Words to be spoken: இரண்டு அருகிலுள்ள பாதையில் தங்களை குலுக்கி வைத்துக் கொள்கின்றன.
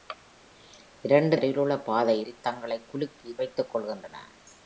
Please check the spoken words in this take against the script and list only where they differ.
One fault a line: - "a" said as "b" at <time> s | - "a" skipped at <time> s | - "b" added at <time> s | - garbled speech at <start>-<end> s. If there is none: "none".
none